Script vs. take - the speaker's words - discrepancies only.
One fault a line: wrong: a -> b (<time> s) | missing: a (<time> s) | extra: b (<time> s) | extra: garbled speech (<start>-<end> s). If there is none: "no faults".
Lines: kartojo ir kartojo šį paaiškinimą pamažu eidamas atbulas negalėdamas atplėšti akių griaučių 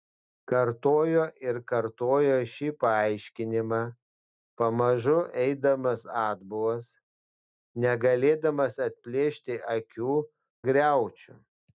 no faults